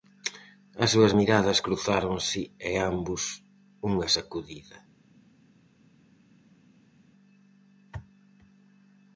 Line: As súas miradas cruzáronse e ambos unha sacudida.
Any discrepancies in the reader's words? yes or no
no